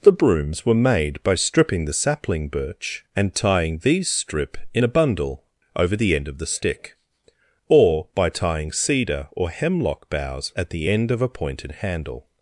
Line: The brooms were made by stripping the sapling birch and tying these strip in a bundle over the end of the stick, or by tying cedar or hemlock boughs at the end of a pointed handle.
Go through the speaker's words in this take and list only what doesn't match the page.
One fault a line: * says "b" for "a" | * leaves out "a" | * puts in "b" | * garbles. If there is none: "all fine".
all fine